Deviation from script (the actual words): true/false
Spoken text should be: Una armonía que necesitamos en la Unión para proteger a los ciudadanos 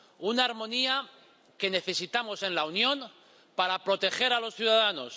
false